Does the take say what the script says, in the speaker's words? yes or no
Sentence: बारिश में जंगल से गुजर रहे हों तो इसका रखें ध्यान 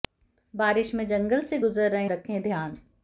no